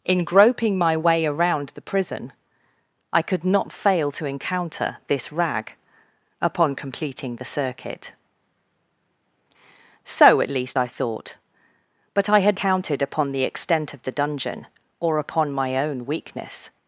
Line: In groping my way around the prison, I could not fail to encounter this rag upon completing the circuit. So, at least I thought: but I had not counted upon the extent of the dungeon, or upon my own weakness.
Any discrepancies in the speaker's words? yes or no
yes